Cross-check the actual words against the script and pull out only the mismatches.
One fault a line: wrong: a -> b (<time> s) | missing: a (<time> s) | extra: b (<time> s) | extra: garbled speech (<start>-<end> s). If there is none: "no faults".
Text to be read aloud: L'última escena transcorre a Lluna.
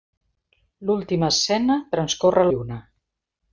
no faults